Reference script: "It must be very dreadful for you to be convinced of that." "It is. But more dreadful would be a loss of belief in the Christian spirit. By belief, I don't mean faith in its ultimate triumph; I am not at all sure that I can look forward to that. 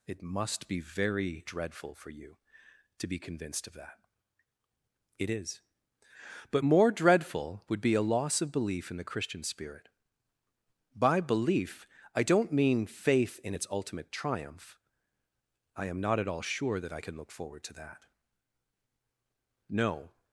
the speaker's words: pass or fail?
fail